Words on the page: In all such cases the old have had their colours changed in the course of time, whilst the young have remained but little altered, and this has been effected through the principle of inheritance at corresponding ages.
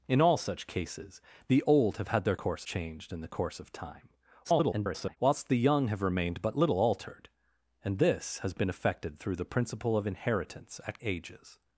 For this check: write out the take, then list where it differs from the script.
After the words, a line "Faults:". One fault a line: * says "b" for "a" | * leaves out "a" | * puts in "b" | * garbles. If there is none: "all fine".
In all such cases the old have had their course changed in the course of time, [garbled] whilst the young have remained but little altered, and this has been effected through the principle of inheritance at ages.
Faults:
* says "course" for "colours"
* garbles
* leaves out "corresponding"